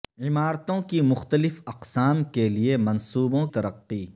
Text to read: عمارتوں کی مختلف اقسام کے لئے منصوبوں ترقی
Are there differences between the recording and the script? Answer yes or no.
no